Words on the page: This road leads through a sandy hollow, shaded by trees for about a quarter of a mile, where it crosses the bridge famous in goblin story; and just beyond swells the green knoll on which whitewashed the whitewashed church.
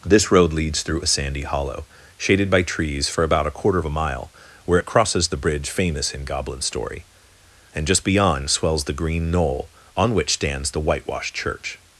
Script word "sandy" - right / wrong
right